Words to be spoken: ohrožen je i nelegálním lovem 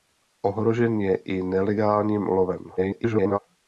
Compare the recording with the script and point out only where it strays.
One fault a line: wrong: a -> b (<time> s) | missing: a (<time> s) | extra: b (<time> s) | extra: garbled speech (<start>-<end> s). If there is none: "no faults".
extra: garbled speech (2.8-3.4 s)